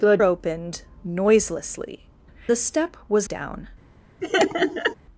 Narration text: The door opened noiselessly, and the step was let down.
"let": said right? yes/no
no